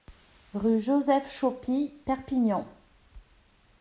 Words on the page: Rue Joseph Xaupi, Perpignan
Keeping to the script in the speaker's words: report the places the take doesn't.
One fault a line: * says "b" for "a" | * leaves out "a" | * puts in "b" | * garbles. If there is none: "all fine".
all fine